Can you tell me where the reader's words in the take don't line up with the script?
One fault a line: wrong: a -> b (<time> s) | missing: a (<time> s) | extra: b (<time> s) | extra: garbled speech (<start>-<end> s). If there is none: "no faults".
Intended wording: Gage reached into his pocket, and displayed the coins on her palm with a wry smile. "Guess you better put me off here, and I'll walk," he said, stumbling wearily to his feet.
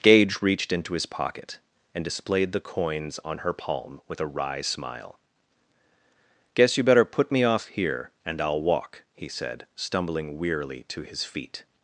no faults